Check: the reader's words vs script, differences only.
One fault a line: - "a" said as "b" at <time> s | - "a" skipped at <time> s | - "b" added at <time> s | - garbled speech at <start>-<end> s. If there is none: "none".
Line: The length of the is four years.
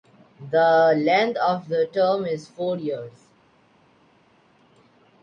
- "term" added at 1.9 s